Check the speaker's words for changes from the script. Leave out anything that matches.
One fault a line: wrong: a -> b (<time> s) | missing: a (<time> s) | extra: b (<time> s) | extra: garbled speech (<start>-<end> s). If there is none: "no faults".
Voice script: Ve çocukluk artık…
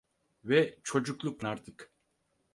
no faults